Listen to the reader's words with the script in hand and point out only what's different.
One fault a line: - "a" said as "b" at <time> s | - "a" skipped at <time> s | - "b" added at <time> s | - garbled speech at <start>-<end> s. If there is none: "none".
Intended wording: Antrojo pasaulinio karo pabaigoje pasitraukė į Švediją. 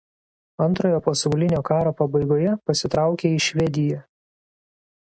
none